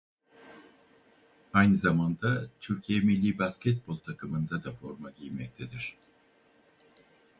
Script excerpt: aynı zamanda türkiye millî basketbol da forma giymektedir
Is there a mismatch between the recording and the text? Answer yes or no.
yes